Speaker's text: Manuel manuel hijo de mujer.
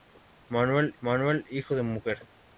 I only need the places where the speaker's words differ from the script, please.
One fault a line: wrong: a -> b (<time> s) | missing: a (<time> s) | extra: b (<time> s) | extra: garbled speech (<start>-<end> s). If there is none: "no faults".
no faults